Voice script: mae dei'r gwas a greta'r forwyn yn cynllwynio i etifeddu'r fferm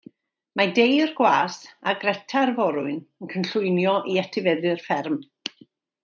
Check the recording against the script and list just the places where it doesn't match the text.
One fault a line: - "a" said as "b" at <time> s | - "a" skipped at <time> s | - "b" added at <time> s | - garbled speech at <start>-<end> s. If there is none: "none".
none